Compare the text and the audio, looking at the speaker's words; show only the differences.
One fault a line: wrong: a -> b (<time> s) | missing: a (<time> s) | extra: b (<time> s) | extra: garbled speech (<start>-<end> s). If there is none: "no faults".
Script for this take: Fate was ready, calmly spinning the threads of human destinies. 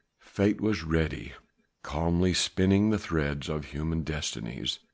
no faults